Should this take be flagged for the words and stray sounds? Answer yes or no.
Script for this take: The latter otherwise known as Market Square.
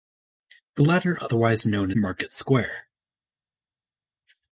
yes